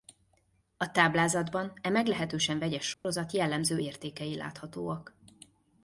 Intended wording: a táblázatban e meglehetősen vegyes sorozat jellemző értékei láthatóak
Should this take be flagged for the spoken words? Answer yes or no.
no